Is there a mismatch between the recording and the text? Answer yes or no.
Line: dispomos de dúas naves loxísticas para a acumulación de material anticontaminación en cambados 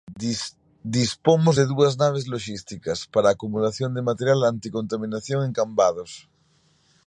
no